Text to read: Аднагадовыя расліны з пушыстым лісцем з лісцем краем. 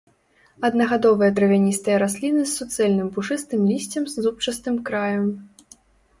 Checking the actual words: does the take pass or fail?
fail